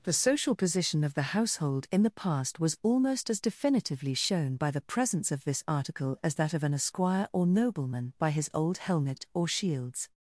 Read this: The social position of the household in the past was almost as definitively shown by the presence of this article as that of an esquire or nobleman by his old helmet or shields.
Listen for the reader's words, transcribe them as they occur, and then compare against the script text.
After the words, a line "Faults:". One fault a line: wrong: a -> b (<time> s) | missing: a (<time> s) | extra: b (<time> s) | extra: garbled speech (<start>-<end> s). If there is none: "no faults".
The social position of the household in the past was almost as definitively shown by the presence of this article as that of an esquire or nobleman by his old helmet or shields.
Faults:
no faults